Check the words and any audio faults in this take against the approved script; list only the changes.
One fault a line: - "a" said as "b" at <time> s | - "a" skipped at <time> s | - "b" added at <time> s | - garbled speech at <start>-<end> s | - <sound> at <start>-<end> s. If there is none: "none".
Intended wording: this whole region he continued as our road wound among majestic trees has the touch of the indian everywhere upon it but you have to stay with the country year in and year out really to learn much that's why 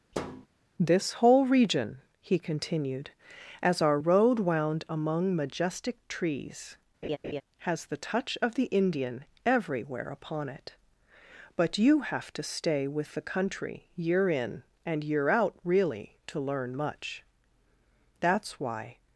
- thud at 0.1-0.5 s
- laugh at 7.0-7.4 s